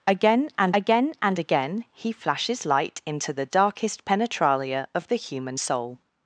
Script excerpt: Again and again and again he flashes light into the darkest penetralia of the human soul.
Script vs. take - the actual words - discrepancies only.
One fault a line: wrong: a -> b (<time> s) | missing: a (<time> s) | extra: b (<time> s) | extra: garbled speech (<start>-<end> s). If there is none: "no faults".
no faults